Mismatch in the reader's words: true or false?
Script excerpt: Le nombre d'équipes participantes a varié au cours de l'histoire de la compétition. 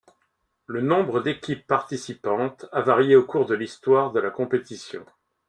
false